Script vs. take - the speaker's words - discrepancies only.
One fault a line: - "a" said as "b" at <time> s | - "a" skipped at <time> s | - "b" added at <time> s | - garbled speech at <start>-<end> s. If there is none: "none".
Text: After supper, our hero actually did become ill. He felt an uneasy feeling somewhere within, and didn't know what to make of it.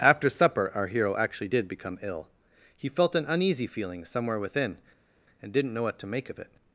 none